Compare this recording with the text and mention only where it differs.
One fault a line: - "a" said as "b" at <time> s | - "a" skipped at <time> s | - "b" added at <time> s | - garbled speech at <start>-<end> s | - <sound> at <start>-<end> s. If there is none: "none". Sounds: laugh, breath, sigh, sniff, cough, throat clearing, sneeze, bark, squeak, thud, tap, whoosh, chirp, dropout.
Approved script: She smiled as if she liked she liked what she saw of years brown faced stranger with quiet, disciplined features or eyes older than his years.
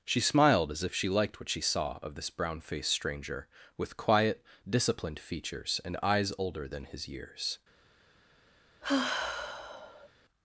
- "she liked" skipped at 1.4 s
- "years" said as "this" at 2.1 s
- "or" said as "and" at 5.8 s
- sigh at 8.8-10.1 s